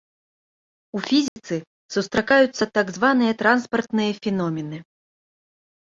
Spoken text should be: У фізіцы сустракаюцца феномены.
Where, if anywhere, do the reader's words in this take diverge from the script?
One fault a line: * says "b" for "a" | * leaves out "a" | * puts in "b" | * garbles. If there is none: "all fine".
* puts in "так званыя транспартныя"